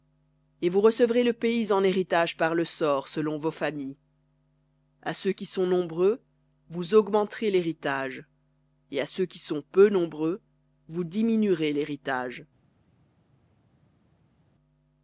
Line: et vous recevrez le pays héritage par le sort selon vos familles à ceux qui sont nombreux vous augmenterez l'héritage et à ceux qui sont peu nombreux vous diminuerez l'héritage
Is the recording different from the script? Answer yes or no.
yes